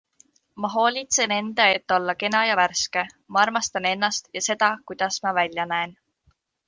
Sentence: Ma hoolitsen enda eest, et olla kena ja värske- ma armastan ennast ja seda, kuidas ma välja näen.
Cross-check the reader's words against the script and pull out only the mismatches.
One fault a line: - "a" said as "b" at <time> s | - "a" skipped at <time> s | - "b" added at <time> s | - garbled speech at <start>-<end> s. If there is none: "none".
- "eest" skipped at 1.7 s